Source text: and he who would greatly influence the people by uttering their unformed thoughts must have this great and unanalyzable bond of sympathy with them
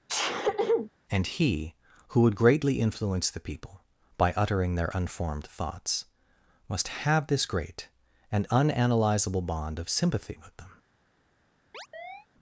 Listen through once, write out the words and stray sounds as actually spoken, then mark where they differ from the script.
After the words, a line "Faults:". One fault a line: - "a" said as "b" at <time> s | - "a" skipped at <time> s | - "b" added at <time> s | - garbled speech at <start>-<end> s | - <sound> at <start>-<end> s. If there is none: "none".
and he who would greatly influence the people by uttering their unformed thoughts must have this great and unanalyzable bond of sympathy with them
Faults:
- sneeze at 0.1-0.9 s
- chirp at 11.7-12.3 s